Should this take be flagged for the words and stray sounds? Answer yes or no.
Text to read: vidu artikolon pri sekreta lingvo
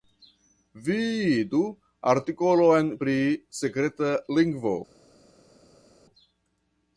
no